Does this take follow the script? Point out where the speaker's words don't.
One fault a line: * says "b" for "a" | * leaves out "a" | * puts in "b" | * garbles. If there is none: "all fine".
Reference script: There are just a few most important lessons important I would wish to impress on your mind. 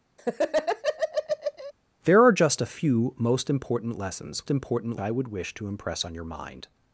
all fine